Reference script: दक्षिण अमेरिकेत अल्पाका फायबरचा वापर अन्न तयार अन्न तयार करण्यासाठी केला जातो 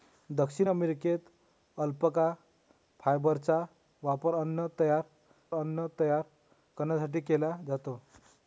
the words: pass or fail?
pass